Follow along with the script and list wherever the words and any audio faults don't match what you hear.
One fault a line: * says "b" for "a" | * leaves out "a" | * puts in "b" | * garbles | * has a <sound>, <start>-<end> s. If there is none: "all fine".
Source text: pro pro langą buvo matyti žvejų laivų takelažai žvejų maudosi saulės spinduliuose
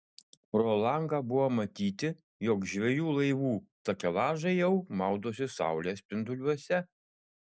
* leaves out "pro"
* puts in "jog"
* says "jau" for "žvejų"